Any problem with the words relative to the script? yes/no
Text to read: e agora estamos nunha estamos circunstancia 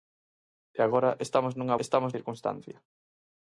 no